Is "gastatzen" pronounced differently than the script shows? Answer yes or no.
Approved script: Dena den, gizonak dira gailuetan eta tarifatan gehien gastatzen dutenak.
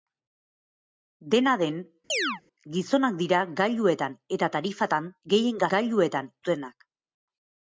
yes